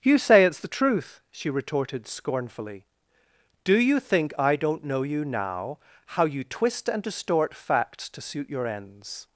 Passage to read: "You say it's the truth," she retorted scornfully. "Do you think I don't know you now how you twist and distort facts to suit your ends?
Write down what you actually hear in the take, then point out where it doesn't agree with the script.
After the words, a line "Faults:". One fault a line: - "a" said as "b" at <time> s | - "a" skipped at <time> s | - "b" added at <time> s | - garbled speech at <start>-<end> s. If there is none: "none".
"You say it's the truth," she retorted scornfully. "Do you think I don't know you now how you twist and distort facts to suit your ends?
Faults:
none